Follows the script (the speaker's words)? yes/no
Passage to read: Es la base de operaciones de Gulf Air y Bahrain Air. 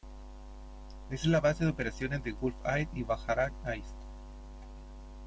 yes